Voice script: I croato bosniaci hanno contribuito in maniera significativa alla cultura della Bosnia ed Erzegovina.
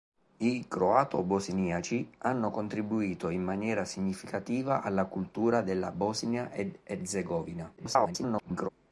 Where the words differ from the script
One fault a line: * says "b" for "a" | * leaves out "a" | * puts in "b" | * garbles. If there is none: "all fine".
* garbles